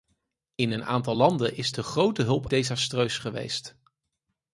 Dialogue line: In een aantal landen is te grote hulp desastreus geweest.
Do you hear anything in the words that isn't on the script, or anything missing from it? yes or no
no